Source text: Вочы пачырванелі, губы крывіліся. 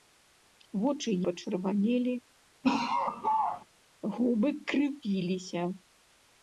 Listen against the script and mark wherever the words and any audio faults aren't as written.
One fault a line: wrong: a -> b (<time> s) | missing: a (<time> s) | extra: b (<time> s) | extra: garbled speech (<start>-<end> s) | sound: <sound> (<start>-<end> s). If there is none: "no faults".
sound: laugh (2.6-3.7 s)